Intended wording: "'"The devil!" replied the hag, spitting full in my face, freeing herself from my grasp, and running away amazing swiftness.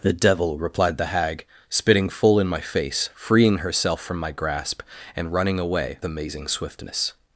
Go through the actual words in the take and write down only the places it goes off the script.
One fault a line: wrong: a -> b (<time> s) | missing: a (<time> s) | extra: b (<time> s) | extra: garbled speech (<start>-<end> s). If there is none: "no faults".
no faults